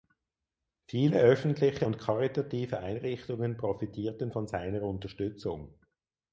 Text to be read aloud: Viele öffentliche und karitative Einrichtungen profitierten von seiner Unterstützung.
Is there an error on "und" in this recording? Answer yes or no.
no